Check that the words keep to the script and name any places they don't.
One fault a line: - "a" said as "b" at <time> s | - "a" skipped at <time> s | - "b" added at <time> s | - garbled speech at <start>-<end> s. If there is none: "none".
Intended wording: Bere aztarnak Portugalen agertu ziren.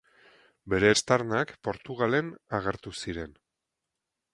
none